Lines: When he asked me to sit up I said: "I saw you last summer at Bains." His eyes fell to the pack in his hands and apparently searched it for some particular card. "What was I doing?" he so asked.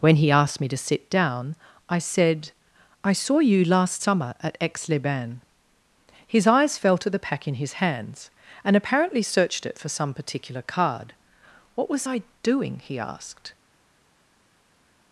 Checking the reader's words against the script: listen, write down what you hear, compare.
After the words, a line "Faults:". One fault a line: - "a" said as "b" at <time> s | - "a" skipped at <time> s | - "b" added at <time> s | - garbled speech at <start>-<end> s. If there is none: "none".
When he asked me to sit down I said: "I saw you last summer at Aix les Bains." His eyes fell to the pack in his hands and apparently searched it for some particular card. "What was I doing?" he asked.
Faults:
- "up" said as "down" at 1.1 s
- "Aix les" added at 4.6 s
- "so" skipped at 13.0 s